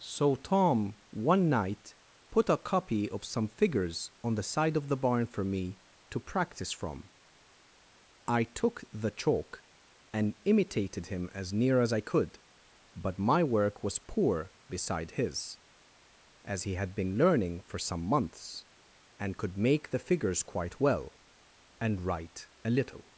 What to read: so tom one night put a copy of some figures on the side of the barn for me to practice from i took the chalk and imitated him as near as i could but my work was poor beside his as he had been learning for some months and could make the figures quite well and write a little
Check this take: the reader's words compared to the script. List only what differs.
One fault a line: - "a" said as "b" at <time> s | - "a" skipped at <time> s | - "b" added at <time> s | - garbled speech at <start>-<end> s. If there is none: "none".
none